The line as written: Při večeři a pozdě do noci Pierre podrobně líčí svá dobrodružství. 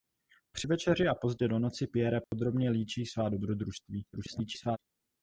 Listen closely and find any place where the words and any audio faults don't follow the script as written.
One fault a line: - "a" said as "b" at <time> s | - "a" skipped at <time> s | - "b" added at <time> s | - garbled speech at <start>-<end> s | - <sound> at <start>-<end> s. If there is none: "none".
- dropout at 2.2-2.3 s
- garbled speech at 4.1-4.8 s